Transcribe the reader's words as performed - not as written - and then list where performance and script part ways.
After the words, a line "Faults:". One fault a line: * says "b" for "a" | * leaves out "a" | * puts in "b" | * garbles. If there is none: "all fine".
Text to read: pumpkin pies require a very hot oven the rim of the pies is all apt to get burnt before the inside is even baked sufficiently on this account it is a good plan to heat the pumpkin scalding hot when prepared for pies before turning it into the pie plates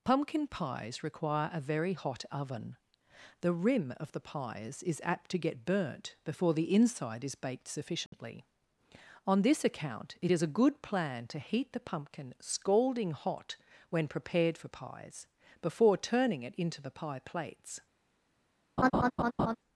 pumpkin pies require a very hot oven the rim of the pies is apt to get burnt before the inside is baked sufficiently on this account it is a good plan to heat the pumpkin scalding hot when prepared for pies before turning it into the pie plates
Faults:
* leaves out "all"
* leaves out "even"